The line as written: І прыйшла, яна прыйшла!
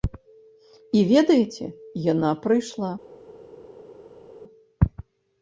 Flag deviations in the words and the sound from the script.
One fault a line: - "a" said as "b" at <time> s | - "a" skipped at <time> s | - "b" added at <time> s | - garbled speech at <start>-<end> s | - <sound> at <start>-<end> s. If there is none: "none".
- "прыйшла" said as "ведаеце" at 1.1 s